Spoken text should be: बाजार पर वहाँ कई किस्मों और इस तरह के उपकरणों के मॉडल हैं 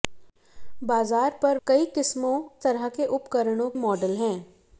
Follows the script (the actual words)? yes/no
no